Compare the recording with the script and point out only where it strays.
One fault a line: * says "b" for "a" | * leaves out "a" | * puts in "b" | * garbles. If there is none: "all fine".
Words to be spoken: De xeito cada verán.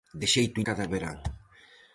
all fine